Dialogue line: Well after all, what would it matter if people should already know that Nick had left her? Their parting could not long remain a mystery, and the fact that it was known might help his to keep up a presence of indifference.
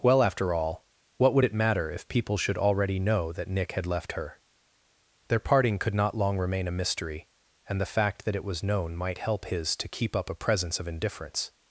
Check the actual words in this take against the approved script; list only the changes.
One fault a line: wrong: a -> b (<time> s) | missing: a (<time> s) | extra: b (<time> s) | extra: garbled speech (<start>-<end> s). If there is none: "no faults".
no faults